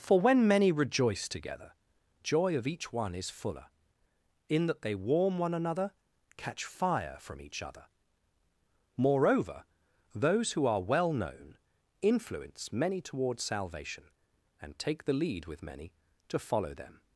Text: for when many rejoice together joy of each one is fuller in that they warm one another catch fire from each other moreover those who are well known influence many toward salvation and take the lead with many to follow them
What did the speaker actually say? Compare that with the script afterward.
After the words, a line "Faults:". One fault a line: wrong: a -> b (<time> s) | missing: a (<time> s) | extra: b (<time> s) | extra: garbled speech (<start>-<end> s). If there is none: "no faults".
for when many rejoice together joy of each one is fuller in that they warm one another catch fire from each other moreover those who are well known influence many toward salvation and take the lead with many to follow them
Faults:
no faults